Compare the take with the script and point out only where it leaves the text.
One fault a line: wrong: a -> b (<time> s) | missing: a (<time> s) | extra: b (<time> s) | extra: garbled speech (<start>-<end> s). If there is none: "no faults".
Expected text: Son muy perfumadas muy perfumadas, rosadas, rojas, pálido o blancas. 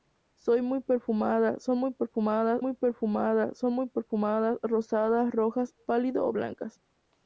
no faults